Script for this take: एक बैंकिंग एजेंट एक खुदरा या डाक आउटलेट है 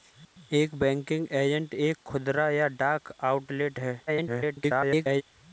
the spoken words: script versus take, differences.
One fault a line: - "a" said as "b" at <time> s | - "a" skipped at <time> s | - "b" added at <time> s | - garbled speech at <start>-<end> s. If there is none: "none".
- garbled speech at 4.1-5.2 s